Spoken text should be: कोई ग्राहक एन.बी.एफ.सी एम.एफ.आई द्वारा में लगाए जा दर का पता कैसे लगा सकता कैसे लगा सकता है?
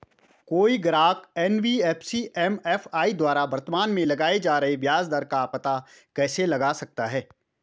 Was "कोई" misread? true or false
false